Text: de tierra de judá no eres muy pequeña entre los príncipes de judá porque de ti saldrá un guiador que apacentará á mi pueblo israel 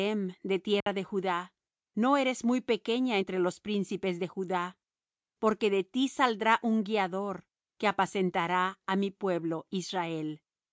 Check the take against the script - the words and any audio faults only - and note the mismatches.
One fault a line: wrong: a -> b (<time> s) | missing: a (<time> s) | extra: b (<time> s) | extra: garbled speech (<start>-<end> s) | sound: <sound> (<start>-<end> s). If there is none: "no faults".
sound: dropout (0.8-0.9 s)